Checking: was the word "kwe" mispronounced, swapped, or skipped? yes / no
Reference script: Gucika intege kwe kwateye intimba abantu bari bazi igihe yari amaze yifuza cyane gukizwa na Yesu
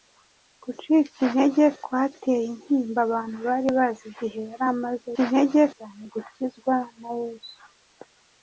yes